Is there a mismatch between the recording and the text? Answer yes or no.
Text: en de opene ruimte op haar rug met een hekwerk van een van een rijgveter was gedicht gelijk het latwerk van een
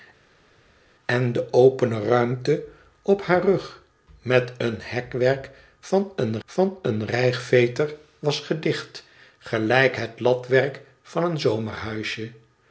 no